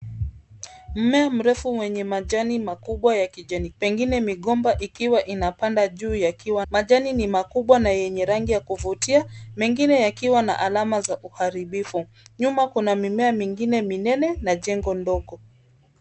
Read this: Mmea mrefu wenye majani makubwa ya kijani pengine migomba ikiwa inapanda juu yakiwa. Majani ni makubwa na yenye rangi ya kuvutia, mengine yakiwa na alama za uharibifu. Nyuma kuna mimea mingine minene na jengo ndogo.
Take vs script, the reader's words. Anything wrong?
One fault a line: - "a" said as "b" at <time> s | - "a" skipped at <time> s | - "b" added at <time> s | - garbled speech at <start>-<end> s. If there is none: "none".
none